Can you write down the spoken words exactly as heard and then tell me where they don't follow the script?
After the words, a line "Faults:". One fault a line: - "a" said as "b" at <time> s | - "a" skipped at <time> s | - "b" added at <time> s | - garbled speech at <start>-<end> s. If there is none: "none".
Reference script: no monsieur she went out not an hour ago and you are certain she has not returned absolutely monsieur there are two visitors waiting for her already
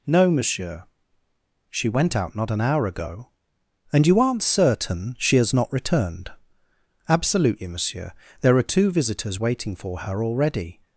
no monsieur she went out not an hour ago and you aren't certain she has not returned absolutely monsieur there are two visitors waiting for her already
Faults:
- "are" said as "aren't" at 4.2 s